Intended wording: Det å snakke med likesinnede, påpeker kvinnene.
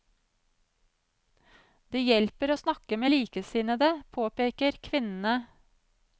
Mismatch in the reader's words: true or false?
true